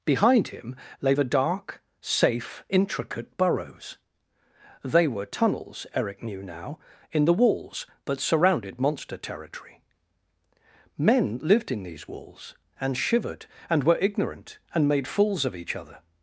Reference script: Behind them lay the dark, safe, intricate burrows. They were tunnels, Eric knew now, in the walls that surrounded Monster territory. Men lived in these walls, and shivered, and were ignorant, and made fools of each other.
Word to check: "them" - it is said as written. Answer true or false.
false